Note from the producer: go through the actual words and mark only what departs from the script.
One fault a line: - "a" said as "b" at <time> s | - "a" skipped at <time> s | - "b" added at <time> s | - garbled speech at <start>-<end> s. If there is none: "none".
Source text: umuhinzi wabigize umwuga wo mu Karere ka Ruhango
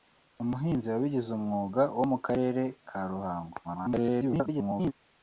- garbled speech at 3.6-4.9 s